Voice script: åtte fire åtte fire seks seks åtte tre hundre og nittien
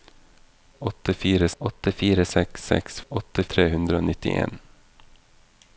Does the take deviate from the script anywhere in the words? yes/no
no